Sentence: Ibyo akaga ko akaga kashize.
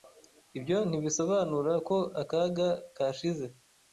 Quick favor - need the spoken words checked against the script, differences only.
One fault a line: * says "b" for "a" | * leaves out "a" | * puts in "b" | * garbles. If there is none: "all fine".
* says "ntibisobanura" for "akaga"